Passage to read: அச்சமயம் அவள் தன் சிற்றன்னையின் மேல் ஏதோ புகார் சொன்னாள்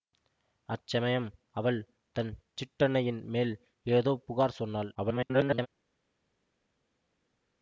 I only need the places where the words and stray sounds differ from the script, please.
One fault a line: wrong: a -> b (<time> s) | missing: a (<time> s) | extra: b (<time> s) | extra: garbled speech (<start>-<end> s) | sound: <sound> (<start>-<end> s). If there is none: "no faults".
extra: garbled speech (4.9-5.7 s)